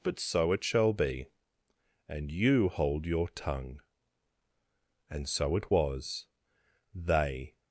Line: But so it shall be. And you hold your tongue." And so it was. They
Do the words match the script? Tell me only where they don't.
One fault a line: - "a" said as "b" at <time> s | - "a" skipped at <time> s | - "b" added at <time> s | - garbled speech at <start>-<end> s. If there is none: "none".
none